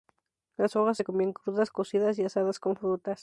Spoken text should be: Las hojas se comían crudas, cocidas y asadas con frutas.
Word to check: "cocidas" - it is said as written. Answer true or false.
true